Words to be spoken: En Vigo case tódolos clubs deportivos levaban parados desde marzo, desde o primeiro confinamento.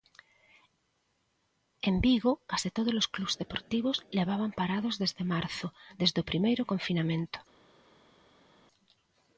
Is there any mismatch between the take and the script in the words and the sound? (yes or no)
no